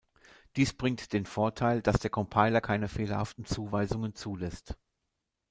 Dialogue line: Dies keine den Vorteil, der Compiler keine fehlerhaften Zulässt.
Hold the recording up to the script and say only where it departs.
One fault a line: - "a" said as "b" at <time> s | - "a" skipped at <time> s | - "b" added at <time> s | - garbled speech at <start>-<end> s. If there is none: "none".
- "keine" said as "bringt" at 0.7 s
- "dass" added at 1.8 s
- "Zuweisungen" added at 3.5 s